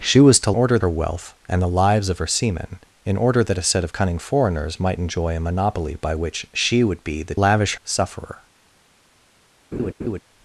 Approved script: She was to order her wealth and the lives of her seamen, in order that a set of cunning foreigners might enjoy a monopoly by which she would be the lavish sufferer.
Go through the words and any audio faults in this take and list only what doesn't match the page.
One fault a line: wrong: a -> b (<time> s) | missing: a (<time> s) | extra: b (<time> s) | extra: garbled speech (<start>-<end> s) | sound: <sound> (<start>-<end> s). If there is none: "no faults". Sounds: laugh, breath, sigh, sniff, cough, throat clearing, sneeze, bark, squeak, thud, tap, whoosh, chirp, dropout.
sound: laugh (9.7-10.2 s)